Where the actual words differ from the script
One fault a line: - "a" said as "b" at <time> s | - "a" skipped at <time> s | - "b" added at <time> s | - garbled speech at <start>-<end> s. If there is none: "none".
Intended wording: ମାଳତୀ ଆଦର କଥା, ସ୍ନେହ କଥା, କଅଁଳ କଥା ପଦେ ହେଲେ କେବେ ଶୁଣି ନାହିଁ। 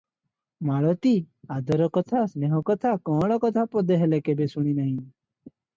none